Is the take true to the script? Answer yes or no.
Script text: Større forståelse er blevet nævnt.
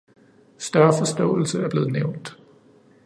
yes